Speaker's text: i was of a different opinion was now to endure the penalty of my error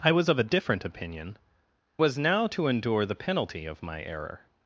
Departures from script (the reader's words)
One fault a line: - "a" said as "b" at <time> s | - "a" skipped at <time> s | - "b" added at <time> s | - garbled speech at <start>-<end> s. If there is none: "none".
none